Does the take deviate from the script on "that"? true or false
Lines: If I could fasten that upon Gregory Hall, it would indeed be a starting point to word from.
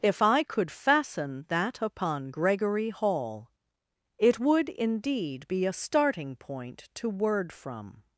false